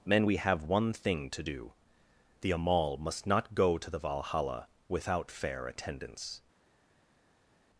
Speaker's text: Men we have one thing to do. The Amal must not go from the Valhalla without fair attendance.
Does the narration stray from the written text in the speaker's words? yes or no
yes